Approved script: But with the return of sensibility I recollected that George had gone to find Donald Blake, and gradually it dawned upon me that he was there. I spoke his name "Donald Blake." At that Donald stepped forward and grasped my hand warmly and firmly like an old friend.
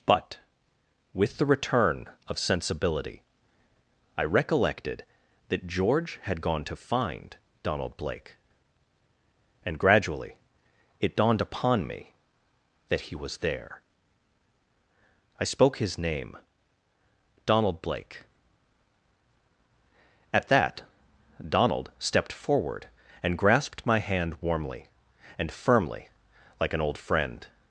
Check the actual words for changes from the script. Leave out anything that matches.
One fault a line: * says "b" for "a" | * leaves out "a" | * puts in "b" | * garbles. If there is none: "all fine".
all fine